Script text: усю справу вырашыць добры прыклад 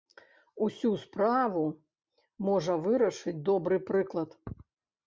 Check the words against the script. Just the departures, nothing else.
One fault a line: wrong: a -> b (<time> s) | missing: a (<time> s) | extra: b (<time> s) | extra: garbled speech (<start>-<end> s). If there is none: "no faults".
extra: можа (2.5 s)